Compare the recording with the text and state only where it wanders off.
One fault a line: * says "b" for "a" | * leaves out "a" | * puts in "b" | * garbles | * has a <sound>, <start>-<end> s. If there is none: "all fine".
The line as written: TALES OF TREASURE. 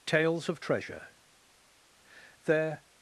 * puts in "There"